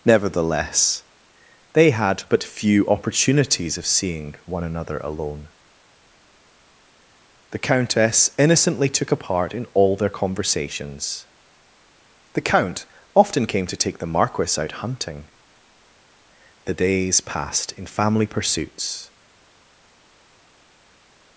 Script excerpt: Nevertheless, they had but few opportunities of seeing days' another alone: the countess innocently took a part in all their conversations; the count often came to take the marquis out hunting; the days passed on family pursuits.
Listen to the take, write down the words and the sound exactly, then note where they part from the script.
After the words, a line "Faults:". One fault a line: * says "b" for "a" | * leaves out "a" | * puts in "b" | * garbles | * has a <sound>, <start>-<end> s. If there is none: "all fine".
Nevertheless, they had but few opportunities of seeing one' another alone: the countess innocently took a part in all their conversations; the count often came to take the marquis out hunting; the days passed in family pursuits.
Faults:
* says "one" for "days"
* says "in" for "on"